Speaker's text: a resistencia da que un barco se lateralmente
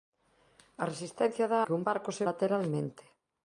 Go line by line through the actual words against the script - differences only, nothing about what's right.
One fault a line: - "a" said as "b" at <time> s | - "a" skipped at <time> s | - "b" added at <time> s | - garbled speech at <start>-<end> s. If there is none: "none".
none